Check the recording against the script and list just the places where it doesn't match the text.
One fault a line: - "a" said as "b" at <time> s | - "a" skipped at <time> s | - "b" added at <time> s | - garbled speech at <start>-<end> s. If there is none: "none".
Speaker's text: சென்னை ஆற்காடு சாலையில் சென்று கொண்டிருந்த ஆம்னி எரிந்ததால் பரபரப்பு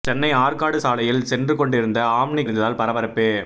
none